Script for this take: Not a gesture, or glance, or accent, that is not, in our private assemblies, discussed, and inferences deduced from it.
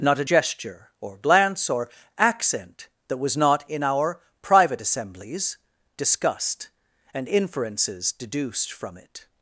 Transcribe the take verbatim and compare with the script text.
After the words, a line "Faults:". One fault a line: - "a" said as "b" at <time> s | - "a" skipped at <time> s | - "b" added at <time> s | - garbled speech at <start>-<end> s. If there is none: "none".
Not a gesture, or glance, or accent, that was not, in our private assemblies, discussed, and inferences deduced from it.
Faults:
- "is" said as "was" at 3.2 s